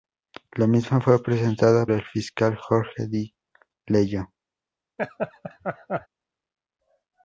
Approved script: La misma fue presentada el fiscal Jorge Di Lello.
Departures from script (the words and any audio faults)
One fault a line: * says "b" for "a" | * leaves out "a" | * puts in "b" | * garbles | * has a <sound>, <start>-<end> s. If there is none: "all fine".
* has a laugh, 5.0-6.1 s